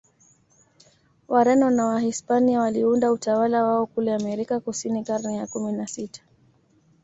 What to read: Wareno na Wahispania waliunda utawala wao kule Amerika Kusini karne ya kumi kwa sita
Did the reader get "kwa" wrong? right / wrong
wrong